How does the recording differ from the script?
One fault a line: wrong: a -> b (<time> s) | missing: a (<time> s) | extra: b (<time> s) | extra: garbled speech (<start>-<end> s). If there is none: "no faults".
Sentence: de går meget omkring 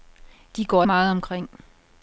no faults